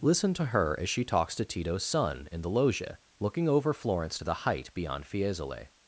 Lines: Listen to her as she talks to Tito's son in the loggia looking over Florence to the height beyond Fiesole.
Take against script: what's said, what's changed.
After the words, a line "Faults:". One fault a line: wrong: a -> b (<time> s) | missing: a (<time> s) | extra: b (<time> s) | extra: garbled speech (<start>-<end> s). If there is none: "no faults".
Listen to her as she talks to Tito's son in the loggia looking over Florence to the height beyond Fiesole.
Faults:
no faults